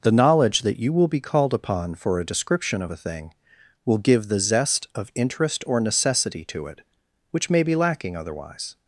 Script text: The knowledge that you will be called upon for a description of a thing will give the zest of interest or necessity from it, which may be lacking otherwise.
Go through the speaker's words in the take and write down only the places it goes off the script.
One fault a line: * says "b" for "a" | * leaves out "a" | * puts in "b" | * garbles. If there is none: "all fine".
* says "to" for "from"